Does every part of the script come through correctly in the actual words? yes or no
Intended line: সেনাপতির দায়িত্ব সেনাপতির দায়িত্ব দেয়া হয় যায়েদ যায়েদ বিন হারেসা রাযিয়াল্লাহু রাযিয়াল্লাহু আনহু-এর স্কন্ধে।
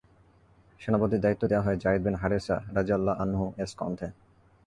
no